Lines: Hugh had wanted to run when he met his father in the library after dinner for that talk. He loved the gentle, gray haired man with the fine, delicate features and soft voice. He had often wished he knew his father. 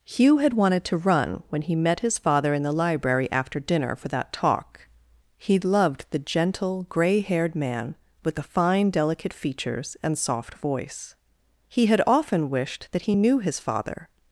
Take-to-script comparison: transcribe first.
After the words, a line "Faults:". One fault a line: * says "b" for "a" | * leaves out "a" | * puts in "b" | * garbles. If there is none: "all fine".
Hugh had wanted to run when he met his father in the library after dinner for that talk. He loved the gentle, gray haired man with the fine, delicate features and soft voice. He had often wished that he knew his father.
Faults:
* puts in "that"